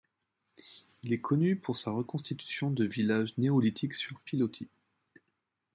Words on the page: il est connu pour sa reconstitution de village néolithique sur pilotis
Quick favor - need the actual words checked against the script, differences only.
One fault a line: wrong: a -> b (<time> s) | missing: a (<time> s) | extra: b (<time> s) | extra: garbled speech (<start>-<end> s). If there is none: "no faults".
no faults